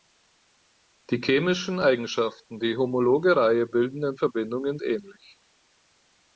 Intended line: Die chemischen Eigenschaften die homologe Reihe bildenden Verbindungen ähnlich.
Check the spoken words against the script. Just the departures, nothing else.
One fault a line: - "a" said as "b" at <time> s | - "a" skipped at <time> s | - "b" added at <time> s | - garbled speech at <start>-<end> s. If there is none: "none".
none